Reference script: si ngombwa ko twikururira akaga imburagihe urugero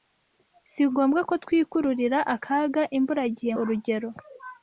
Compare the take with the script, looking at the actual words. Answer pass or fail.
pass